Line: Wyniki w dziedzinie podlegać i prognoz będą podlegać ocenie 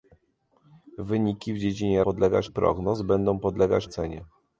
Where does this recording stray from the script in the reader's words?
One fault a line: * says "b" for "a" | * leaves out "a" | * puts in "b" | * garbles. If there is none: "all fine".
all fine